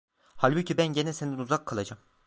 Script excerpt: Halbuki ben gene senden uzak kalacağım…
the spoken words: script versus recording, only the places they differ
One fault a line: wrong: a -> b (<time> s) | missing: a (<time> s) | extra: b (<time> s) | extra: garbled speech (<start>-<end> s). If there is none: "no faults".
no faults